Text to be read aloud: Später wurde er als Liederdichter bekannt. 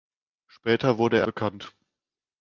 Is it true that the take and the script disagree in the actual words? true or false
true